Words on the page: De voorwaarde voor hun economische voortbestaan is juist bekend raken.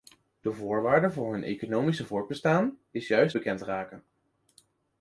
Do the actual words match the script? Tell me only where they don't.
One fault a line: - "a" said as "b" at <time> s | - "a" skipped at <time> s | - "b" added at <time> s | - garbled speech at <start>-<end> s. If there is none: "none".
none